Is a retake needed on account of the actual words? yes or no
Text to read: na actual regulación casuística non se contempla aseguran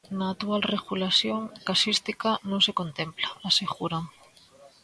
no